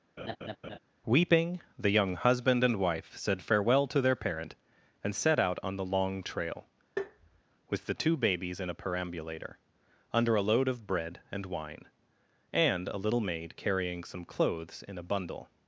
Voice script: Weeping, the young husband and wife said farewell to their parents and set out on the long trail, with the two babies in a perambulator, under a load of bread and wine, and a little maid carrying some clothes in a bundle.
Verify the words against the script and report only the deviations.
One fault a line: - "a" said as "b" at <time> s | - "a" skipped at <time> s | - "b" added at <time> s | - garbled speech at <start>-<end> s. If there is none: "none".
- "parents" said as "parent" at 4.1 s